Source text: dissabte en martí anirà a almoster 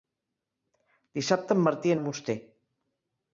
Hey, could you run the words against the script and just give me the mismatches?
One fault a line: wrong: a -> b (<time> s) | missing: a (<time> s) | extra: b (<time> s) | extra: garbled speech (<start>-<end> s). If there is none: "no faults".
missing: anirà (1.9 s)